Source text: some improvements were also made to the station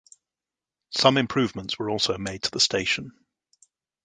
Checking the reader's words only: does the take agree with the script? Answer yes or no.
yes